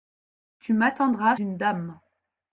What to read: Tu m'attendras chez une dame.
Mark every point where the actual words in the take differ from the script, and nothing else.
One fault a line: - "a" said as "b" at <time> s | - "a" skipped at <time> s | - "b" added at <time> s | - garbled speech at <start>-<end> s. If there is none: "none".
- "chez" skipped at 1.4 s